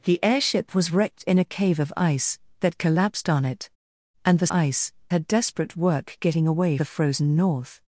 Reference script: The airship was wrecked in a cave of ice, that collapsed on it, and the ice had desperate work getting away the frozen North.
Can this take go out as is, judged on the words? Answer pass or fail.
pass